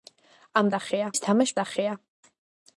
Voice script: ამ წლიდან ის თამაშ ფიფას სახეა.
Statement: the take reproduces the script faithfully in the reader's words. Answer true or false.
false